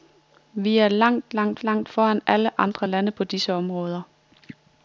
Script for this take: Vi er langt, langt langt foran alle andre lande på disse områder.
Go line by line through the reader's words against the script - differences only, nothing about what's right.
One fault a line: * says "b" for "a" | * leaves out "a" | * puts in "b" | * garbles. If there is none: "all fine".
all fine